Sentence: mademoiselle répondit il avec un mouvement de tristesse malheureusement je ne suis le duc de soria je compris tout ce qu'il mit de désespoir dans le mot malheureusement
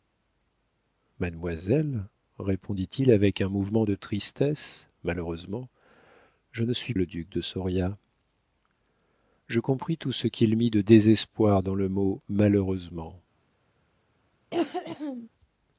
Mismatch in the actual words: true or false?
false